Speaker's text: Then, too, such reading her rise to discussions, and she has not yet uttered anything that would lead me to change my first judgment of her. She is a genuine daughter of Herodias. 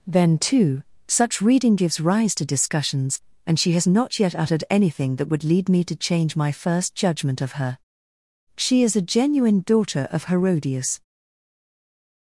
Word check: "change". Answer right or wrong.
right